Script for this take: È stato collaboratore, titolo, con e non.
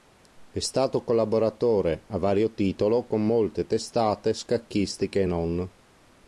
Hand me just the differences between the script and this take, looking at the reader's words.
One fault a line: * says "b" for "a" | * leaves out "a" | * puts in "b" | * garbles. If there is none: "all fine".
* puts in "a vario"
* puts in "molte testate scacchistiche"